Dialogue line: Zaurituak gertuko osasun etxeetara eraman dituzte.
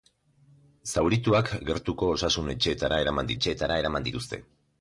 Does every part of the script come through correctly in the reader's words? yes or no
no